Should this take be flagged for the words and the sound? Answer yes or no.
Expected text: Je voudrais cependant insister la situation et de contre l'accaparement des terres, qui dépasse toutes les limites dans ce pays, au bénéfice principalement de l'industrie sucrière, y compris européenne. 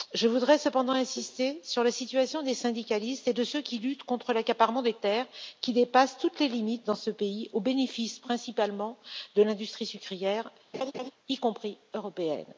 yes